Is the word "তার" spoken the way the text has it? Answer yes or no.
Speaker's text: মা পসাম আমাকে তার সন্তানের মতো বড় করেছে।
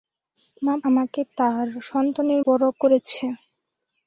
yes